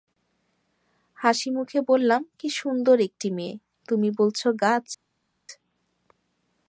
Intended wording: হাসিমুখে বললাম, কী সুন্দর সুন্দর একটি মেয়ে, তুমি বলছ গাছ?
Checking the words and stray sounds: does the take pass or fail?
fail